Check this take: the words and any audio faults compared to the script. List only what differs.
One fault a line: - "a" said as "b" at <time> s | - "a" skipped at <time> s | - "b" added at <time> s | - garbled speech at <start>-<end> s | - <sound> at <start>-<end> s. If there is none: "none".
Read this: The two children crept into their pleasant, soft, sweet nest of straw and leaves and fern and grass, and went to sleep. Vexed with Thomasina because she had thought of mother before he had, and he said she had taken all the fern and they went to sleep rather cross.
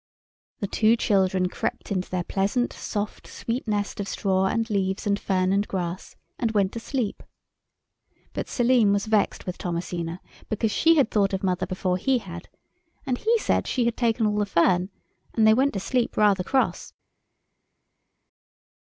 - "But Selim was" added at 8.3 s